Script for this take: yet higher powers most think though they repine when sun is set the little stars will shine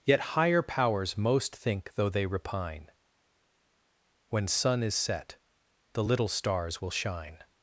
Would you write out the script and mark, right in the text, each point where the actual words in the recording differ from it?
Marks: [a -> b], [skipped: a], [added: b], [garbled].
yet higher powers most think though they repine when sun is set the little stars will shine